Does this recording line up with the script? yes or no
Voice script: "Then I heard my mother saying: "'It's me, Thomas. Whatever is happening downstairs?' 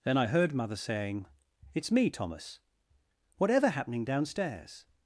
no